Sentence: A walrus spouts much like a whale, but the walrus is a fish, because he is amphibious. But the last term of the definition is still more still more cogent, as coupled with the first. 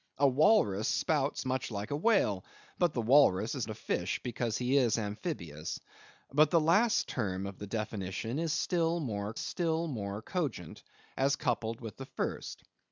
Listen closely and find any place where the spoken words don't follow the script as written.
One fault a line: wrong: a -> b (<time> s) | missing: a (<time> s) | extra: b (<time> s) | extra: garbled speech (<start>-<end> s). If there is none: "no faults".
no faults